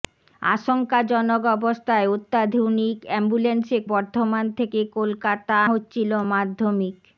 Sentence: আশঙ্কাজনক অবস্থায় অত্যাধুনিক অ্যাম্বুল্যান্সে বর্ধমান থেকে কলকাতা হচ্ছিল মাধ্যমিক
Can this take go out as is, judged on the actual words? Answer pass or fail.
pass